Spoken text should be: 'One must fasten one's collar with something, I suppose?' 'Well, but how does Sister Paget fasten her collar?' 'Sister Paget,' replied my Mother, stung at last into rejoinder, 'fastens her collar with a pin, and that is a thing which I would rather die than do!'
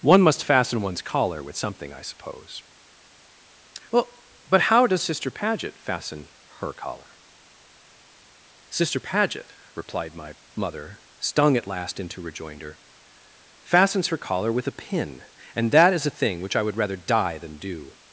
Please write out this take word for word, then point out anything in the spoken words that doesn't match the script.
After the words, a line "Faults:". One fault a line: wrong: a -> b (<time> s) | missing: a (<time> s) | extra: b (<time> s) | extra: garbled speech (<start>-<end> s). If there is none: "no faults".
'One must fasten one's collar with something, I suppose?' 'Well, but how does Sister Paget fasten her collar?' 'Sister Paget,' replied my Mother, stung at last into rejoinder, 'fastens her collar with a pin, and that is a thing which I would rather die than do!'
Faults:
no faults